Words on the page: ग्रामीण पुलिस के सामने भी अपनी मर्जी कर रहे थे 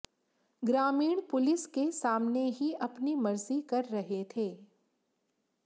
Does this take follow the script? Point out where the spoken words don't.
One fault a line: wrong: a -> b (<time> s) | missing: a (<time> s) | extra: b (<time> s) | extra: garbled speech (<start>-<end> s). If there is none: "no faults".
wrong: भी -> ही (2.5 s)